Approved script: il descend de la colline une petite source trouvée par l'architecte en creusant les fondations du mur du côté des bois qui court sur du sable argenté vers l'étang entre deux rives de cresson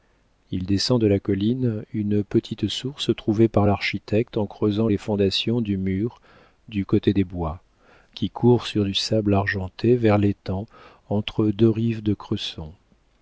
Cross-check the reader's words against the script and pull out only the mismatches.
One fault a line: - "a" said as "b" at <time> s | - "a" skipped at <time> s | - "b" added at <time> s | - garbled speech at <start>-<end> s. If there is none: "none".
none